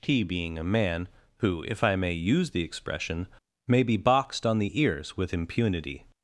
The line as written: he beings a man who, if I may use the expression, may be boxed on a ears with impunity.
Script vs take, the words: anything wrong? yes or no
yes